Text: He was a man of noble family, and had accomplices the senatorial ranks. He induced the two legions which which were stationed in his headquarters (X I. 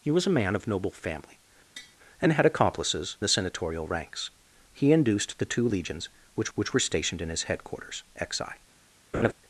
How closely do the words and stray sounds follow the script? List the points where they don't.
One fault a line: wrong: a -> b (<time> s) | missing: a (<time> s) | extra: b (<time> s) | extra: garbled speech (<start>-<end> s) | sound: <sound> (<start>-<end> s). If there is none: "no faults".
sound: tap (1.8-2.0 s)
sound: laugh (9.1-9.3 s)